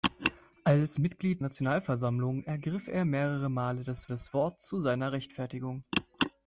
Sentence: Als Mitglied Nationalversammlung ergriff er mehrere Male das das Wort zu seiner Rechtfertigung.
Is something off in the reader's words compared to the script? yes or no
no